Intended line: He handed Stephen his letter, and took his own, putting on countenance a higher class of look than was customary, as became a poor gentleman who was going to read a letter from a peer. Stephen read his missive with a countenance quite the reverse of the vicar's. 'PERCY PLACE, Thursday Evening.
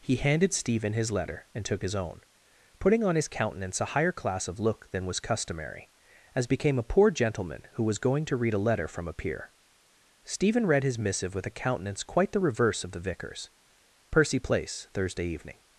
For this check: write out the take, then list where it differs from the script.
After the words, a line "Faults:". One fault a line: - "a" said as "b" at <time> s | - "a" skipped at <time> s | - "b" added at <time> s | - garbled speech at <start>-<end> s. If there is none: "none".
He handed Stephen his letter, and took his own, putting on his countenance a higher class of look than was customary, as became a poor gentleman who was going to read a letter from a peer. Stephen read his missive with a countenance quite the reverse of the vicar's. 'PERCY PLACE, Thursday Evening.
Faults:
- "his" added at 3.1 s